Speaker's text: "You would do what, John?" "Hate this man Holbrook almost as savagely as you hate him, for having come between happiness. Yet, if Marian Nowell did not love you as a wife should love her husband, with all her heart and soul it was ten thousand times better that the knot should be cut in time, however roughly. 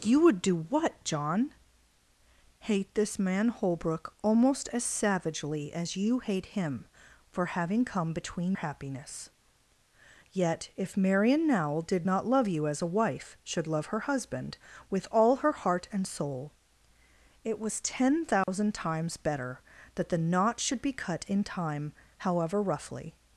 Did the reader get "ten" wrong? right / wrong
right